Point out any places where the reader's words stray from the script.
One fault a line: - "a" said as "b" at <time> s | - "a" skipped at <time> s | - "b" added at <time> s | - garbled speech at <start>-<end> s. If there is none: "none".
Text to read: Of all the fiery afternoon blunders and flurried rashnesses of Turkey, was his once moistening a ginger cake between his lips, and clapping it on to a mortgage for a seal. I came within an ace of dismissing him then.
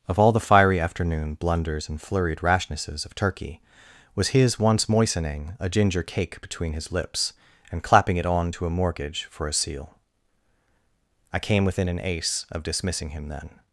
none